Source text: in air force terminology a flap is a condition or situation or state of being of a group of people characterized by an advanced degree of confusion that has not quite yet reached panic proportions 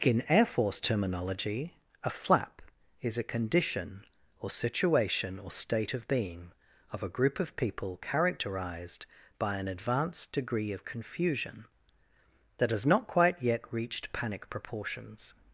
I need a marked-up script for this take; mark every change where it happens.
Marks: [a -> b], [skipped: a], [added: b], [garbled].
in air force terminology a flap is a condition or situation or state of being of a group of people characterized by an advanced degree of confusion that has not quite yet reached panic proportions